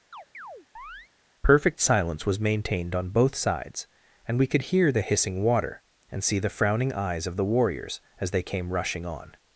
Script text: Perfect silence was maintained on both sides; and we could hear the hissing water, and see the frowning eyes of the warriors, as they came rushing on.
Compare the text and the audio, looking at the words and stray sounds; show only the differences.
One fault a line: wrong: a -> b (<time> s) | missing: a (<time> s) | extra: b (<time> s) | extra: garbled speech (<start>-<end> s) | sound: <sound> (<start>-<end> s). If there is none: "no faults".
sound: chirp (0.1-1.1 s)